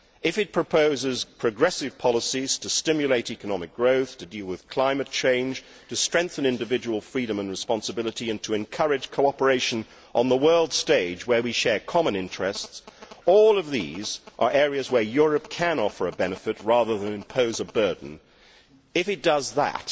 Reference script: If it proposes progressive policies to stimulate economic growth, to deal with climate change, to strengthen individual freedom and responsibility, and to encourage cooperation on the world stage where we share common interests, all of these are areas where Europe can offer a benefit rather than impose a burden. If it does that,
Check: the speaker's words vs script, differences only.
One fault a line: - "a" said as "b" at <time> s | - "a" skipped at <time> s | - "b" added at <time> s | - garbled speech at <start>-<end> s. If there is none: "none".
none